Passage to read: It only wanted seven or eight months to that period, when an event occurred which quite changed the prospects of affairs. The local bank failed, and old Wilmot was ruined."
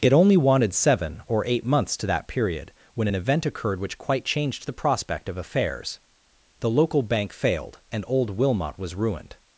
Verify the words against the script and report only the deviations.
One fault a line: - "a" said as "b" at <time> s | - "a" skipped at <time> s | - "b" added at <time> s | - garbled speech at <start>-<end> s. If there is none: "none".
- "prospects" said as "prospect" at 4.7 s